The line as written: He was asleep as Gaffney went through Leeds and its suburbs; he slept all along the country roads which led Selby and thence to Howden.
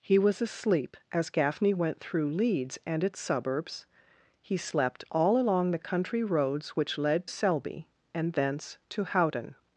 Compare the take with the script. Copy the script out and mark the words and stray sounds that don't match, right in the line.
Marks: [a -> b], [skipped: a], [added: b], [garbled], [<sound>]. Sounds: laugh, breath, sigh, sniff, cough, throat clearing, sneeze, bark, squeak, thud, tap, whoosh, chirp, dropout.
He was asleep as Gaffney went through Leeds and its suburbs; he slept all along the country roads which led Selby and thence to Howden.